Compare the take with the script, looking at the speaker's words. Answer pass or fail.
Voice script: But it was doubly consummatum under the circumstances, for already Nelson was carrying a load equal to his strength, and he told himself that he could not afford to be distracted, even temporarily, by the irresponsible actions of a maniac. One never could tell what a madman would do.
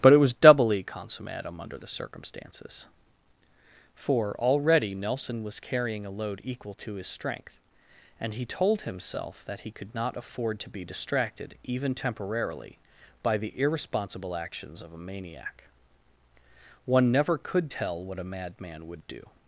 pass